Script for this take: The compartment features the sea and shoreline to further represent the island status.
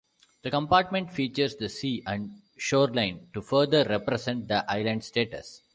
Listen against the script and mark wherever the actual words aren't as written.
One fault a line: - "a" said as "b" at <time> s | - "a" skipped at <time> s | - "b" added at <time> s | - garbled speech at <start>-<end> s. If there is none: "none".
none